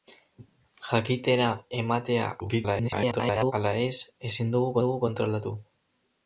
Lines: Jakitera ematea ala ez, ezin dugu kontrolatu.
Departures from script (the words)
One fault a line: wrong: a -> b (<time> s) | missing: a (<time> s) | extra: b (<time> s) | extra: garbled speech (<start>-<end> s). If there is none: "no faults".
extra: garbled speech (2.4-3.5 s)
extra: dugu (4.8 s)